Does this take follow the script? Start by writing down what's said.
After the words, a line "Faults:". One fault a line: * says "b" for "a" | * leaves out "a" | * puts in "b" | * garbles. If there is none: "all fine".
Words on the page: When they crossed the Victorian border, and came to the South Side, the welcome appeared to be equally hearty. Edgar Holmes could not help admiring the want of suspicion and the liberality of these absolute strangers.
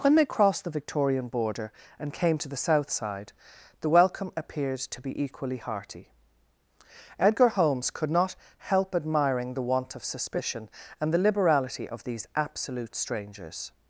When they crossed the Victorian border, and came to the South Side, the welcome appeared to be equally hearty. Edgar Holmes could not help admiring the want of suspicion and the liberality of these absolute strangers.
Faults:
all fine